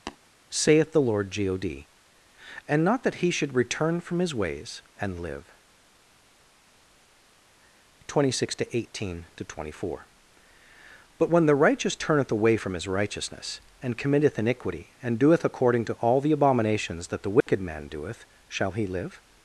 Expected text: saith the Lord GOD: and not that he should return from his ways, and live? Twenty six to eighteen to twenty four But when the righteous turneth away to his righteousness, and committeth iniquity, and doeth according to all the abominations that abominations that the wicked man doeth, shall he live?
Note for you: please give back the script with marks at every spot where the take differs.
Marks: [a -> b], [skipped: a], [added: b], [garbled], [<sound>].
[tap] saith the Lord GOD: and not that he should return from his ways, and live? Twenty six to eighteen to twenty four But when the righteous turneth away [to -> from] his righteousness, and committeth iniquity, and doeth according to all the abominations that [skipped: abominations that] the wicked [dropout] man doeth, shall he live?